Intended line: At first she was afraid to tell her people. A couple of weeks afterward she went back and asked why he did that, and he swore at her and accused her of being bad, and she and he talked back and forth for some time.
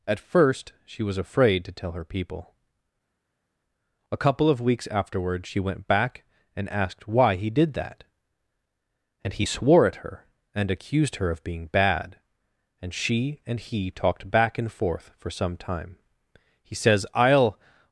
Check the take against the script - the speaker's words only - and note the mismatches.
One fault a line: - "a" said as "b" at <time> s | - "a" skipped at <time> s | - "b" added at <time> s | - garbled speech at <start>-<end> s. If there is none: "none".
- "He says I'll" added at 16.6 s